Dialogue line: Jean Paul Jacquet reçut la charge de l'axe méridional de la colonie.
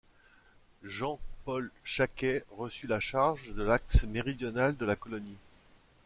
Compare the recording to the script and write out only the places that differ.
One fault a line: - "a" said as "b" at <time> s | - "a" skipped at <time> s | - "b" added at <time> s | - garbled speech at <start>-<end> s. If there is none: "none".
none